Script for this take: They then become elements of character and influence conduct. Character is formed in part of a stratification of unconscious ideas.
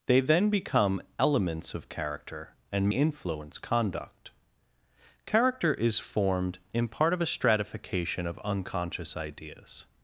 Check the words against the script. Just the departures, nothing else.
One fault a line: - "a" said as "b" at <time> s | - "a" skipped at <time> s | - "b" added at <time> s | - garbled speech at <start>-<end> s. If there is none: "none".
none